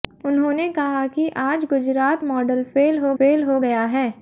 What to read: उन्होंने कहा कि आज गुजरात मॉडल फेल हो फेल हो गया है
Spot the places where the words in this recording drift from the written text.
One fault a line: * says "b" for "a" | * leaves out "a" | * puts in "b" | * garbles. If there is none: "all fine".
all fine